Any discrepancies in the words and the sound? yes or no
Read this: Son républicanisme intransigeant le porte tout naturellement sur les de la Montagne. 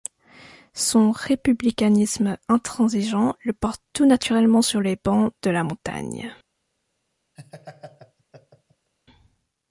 yes